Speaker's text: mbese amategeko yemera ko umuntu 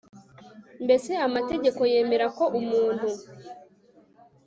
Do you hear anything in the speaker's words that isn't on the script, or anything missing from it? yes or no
no